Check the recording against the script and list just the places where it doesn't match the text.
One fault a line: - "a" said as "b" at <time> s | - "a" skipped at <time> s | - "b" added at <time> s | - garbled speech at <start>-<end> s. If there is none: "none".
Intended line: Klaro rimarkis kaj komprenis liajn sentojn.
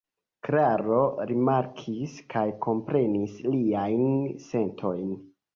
none